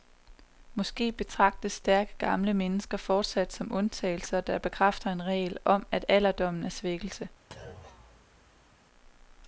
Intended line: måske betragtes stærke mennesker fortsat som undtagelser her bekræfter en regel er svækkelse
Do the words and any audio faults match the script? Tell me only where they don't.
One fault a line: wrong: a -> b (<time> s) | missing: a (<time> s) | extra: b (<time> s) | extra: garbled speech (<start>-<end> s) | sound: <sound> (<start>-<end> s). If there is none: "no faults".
extra: gamle (2.2 s)
wrong: her -> der (4.4 s)
extra: om at alderdommen (5.6 s)
sound: thud (7.5-8.9 s)